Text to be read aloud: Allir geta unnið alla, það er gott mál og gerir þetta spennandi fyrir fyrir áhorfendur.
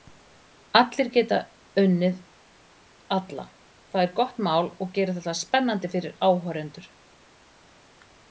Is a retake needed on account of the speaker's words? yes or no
yes